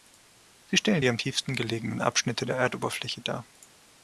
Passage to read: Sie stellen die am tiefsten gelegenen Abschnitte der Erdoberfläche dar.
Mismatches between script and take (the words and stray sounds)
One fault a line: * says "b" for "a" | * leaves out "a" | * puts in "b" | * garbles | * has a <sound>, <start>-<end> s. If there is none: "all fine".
all fine